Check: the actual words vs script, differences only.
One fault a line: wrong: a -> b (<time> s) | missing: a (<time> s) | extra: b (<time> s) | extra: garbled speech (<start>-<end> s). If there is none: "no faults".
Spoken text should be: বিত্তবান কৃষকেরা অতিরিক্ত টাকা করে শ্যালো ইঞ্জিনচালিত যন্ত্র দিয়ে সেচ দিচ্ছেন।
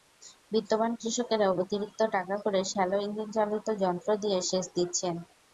no faults